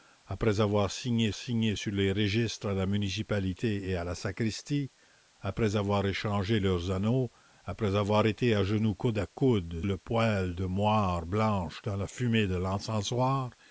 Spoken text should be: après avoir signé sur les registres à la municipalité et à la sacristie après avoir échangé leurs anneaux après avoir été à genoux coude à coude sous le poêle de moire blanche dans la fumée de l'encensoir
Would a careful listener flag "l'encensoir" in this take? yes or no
no